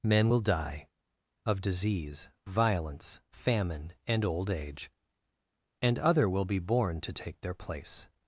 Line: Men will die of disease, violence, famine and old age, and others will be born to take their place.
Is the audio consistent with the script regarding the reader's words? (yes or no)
no